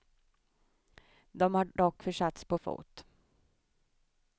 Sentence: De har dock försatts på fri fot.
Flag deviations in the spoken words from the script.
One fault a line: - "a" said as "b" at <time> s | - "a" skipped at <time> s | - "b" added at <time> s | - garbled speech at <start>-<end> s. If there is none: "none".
- "fri" skipped at 2.6 s